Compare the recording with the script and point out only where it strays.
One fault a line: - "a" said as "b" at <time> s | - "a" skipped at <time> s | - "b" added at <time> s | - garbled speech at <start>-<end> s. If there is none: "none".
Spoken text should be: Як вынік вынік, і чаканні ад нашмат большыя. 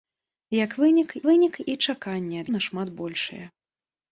none